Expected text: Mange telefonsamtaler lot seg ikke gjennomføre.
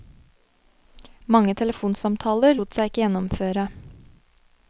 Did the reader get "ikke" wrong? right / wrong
right